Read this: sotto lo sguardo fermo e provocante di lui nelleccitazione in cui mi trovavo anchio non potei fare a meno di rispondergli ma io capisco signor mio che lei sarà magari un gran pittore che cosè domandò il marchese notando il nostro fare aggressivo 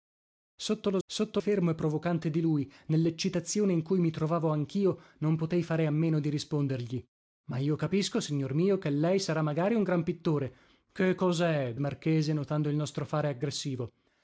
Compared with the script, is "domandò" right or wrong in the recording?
wrong